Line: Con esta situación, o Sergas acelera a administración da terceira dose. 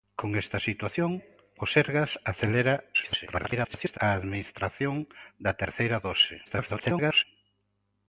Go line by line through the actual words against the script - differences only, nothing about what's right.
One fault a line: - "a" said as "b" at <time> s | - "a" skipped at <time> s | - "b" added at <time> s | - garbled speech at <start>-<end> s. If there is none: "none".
- garbled speech at 2.9-4.0 s
- garbled speech at 6.4-7.2 s